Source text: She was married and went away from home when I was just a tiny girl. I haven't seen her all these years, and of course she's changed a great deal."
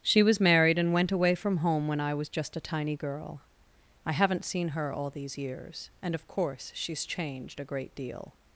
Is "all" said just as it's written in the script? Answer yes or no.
yes